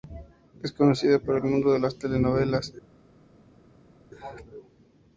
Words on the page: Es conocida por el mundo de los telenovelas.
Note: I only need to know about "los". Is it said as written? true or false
false